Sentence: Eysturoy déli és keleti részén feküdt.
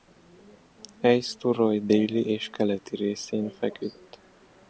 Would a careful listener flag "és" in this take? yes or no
no